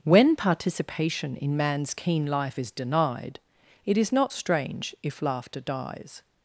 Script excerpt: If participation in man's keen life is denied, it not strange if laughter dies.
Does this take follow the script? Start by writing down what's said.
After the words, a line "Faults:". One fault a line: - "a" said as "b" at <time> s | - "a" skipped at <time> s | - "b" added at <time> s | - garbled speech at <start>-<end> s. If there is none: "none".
When participation in man's keen life is denied, it is not strange if laughter dies.
Faults:
- "If" said as "When" at 0.0 s
- "is" added at 4.0 s